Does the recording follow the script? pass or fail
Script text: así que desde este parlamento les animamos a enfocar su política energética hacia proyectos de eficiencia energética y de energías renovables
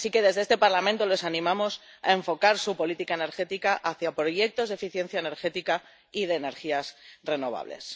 pass